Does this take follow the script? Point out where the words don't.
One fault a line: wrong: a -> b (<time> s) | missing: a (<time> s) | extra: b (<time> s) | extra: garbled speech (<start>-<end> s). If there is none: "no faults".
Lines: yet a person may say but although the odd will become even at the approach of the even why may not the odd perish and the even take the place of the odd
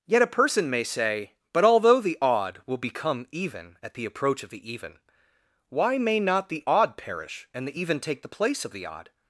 no faults